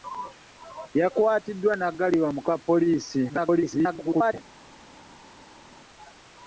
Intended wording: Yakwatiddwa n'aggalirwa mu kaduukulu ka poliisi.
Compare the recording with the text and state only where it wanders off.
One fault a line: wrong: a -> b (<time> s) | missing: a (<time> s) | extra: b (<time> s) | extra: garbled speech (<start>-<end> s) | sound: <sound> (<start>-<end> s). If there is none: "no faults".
missing: kaduukulu (2.4 s)
extra: garbled speech (3.3-4.3 s)